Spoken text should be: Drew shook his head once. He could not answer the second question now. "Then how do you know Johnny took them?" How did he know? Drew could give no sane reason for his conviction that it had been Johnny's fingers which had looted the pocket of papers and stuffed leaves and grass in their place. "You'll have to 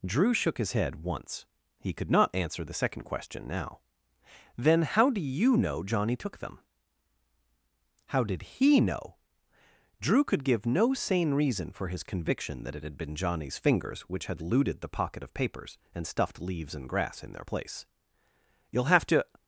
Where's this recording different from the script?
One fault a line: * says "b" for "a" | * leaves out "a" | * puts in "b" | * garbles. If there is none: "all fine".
all fine